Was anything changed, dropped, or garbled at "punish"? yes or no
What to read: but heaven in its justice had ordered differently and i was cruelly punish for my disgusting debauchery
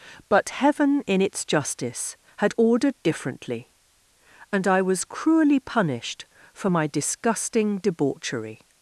yes